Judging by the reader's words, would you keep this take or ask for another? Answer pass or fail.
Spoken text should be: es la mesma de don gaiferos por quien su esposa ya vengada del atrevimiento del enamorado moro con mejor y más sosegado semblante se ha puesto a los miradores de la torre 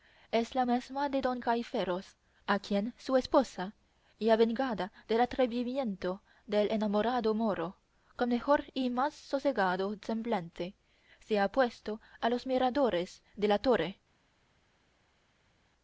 fail